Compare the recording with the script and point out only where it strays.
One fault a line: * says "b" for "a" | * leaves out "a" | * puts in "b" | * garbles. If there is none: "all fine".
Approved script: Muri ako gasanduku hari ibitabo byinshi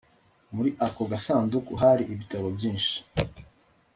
all fine